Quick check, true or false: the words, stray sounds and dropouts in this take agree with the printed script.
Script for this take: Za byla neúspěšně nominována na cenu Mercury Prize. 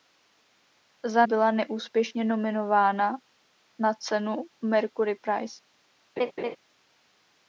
false